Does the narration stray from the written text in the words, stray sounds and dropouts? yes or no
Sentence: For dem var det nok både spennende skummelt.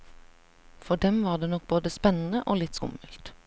yes